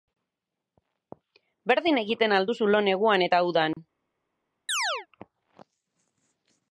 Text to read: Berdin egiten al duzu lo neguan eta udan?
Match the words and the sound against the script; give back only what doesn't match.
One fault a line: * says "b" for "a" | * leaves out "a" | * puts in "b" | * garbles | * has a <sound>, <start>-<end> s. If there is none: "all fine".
* has a dropout, 3.7-3.8 s
* has a chirp, 4.7-5.1 s